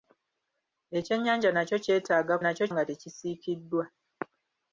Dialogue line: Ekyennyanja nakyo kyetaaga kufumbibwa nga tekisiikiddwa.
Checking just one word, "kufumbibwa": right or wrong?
wrong